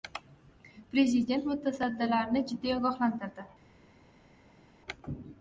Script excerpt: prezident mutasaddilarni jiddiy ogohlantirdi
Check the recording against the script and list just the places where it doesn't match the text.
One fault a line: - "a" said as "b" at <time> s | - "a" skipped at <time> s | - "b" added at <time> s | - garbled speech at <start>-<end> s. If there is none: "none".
none